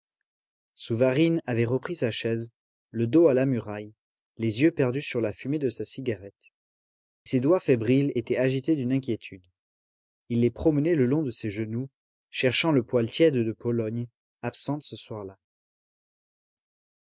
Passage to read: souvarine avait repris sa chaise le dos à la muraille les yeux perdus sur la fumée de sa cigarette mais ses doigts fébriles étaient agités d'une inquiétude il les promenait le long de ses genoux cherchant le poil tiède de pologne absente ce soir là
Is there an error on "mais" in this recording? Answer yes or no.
yes